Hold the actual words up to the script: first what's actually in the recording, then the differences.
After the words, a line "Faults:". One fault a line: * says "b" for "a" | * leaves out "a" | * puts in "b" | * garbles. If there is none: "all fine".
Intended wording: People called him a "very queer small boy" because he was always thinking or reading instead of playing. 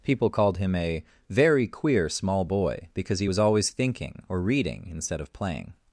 People called him a "very queer small boy" because he was always thinking or reading instead of playing.
Faults:
all fine